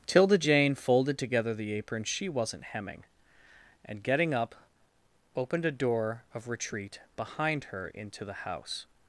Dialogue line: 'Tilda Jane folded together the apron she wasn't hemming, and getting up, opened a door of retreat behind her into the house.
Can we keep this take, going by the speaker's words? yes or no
yes